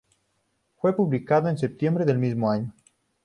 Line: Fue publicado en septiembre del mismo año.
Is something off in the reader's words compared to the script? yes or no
no